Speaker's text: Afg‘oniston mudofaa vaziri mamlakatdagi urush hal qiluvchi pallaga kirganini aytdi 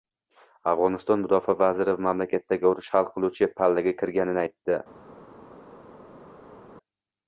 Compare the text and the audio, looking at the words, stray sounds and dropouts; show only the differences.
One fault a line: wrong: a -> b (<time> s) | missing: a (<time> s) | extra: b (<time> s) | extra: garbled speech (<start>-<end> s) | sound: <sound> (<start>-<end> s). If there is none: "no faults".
no faults